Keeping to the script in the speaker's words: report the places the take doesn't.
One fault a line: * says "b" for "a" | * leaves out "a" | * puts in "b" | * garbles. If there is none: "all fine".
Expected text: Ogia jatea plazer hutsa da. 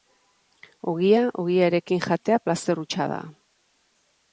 * puts in "ogiarekin"